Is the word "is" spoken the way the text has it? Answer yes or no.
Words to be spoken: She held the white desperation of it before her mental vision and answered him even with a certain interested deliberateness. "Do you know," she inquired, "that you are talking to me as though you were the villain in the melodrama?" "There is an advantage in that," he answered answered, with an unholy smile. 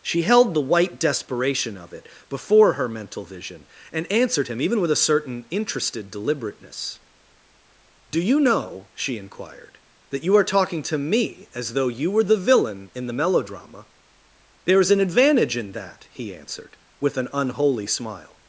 yes